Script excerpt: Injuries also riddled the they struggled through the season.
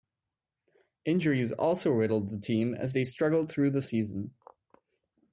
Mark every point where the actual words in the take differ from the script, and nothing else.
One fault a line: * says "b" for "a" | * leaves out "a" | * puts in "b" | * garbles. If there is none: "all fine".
* puts in "team as"